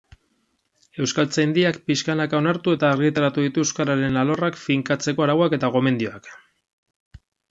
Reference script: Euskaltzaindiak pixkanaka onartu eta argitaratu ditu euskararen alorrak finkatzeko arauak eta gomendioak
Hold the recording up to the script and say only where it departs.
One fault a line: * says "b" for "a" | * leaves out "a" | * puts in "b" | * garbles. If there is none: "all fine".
all fine